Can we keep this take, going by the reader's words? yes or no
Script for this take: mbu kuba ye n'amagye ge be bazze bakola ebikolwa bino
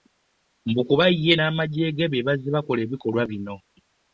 yes